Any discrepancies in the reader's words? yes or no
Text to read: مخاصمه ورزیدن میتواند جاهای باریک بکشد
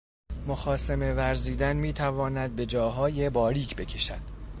yes